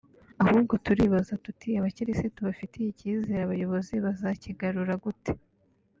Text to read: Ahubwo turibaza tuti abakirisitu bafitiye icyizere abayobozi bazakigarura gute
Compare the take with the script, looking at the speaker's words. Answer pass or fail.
pass